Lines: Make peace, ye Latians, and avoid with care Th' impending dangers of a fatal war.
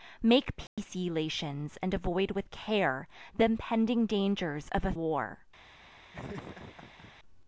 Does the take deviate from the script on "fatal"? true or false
true